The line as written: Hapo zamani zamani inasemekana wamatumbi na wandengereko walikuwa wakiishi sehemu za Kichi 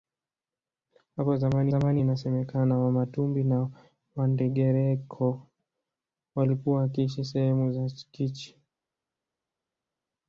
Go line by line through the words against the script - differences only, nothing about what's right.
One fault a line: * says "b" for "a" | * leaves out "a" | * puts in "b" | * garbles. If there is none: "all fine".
all fine